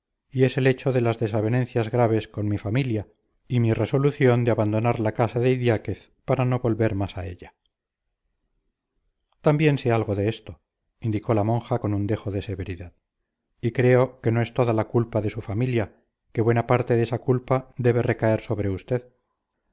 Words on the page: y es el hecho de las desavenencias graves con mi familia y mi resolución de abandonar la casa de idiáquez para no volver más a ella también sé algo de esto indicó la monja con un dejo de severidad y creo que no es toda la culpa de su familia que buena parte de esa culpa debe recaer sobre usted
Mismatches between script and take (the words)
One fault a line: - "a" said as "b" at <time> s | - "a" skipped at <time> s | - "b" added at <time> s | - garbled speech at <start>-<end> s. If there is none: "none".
none